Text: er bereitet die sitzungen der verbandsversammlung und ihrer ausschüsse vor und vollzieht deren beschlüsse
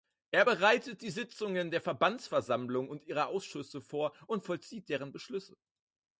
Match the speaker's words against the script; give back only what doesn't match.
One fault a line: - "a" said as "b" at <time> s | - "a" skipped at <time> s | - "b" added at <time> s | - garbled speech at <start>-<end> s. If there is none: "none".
none